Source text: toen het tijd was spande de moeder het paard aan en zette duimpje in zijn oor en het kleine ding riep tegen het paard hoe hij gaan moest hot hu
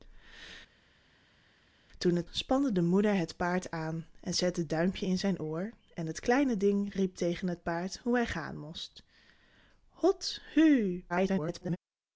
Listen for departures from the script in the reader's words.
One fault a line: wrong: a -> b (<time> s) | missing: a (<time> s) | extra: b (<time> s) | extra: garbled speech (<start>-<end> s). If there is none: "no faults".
missing: tijd was (2.3 s)
extra: garbled speech (11.1-11.8 s)